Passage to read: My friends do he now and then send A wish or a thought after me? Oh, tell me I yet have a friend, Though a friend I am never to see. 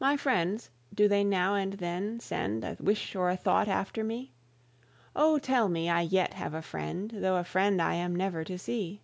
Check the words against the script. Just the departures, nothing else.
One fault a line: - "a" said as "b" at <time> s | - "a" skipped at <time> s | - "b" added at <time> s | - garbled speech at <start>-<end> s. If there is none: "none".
- "he" said as "they" at 1.1 s